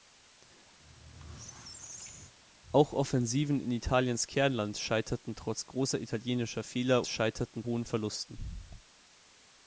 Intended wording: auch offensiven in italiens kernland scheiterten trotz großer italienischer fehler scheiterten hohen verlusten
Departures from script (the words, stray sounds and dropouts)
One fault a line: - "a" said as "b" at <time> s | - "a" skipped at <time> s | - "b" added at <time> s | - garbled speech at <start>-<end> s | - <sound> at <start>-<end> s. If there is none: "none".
- squeak at 0.8-2.3 s